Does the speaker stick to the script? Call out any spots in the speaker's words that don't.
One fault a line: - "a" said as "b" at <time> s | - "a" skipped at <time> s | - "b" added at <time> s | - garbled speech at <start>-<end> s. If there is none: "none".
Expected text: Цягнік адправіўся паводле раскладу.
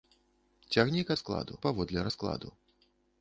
- "адправіўся" said as "раскладу" at 1.1 s